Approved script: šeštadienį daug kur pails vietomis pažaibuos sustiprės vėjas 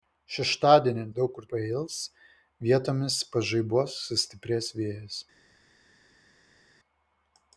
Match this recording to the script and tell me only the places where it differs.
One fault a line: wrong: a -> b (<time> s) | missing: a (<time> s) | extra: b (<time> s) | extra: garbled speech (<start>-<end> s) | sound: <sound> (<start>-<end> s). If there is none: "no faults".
no faults